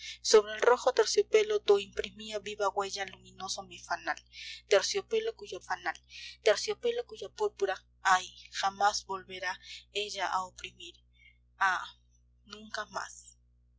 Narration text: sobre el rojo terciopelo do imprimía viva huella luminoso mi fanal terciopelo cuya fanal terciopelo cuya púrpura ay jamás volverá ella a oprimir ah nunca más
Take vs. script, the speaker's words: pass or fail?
pass